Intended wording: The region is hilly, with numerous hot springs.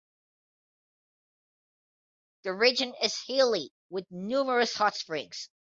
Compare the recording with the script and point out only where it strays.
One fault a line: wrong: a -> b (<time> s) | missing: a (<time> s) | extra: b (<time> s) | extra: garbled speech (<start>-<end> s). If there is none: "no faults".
no faults